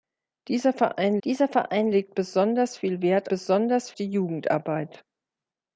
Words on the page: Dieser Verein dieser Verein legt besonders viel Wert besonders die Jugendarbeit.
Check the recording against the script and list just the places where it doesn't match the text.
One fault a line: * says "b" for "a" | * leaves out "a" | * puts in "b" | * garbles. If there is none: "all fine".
all fine